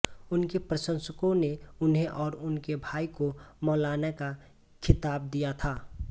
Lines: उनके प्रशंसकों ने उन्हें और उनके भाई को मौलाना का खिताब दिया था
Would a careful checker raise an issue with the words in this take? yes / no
no